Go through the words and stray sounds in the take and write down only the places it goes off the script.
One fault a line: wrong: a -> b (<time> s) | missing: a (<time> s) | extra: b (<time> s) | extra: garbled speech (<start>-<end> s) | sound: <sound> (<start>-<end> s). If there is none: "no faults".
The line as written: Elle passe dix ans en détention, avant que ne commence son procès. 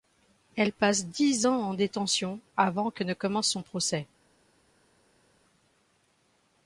no faults